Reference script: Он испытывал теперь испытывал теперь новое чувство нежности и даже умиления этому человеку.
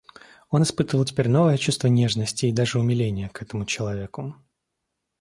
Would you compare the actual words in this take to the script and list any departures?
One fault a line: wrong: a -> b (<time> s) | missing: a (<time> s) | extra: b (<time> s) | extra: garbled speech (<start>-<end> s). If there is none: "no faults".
missing: испытывал теперь (1.3 s)
extra: к (3.3 s)